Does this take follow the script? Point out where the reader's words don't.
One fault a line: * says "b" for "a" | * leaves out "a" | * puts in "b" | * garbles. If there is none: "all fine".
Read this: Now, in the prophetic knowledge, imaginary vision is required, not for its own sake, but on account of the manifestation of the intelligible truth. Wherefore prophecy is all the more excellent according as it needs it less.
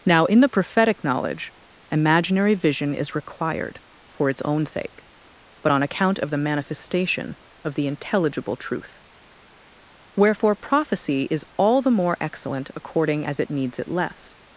* leaves out "not"